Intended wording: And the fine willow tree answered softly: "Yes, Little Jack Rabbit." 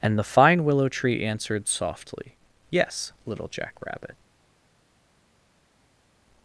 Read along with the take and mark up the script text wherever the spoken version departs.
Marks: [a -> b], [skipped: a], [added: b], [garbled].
And the fine willow tree answered softly: "Yes, Little Jack Rabbit."